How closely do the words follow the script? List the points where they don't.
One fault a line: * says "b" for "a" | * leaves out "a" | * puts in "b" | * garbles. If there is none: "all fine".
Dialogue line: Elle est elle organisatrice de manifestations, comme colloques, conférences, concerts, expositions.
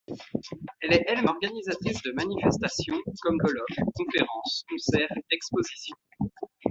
all fine